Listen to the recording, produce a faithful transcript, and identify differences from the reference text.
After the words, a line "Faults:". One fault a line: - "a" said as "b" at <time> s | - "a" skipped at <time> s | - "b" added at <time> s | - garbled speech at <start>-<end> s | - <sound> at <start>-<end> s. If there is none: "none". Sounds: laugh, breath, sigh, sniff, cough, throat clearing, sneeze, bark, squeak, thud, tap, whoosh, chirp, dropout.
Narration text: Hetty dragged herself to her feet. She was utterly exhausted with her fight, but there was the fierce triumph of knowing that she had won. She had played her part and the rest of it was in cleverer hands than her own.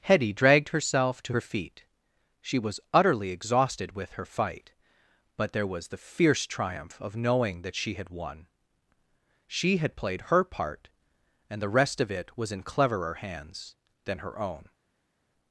Hetty dragged herself to her feet. She was utterly exhausted with her fight, but there was the fierce triumph of knowing that she had won. She had played her part and the rest of it was in cleverer hands than her own.
Faults:
none